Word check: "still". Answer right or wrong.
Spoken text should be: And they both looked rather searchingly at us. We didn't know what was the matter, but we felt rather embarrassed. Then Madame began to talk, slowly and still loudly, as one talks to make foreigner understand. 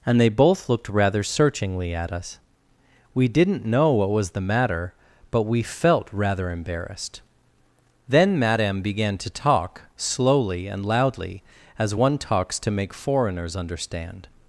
wrong